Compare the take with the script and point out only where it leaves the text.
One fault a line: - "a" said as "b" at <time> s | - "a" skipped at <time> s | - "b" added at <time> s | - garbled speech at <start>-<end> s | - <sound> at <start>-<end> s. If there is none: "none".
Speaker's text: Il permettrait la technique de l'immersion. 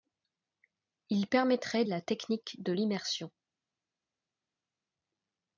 none